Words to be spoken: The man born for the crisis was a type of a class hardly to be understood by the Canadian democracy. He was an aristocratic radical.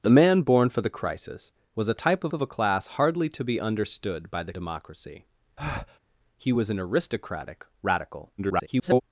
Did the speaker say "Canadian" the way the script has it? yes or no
no